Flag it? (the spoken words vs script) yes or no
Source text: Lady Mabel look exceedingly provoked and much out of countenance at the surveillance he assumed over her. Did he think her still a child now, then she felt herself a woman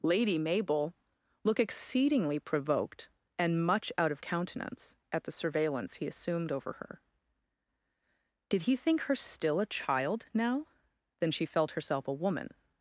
no